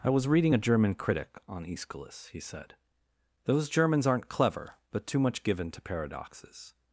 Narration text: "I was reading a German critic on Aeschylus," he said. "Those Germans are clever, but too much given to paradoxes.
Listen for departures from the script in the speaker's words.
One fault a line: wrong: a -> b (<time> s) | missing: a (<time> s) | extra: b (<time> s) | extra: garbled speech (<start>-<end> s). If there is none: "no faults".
wrong: are -> aren't (4.1 s)